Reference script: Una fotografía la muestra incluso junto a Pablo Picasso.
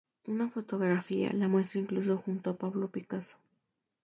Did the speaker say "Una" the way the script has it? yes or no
yes